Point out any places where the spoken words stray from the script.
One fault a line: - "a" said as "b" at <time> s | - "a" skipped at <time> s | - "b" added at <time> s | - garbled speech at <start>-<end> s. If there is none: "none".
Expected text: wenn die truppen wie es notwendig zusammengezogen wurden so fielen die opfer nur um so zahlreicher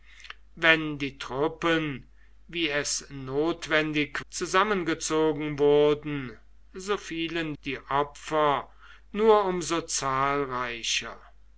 none